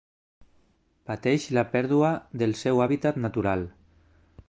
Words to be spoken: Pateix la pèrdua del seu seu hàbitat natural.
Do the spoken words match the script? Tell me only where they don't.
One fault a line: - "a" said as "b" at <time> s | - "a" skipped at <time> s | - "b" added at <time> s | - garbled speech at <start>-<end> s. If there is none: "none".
- "seu" skipped at 2.8 s